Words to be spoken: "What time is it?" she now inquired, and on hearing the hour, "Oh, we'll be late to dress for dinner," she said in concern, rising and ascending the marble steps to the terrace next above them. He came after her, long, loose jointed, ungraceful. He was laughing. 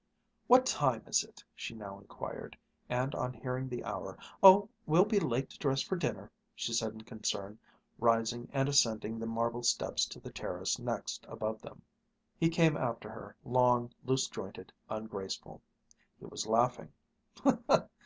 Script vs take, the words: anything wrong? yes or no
no